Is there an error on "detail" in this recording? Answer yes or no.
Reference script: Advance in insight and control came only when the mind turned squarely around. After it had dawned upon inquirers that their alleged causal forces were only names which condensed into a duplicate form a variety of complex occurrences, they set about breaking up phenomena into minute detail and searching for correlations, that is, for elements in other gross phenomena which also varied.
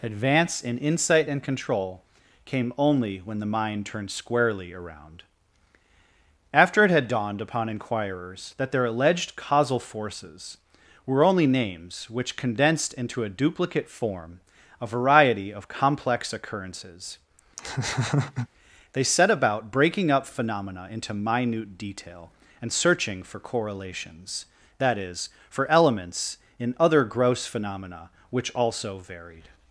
no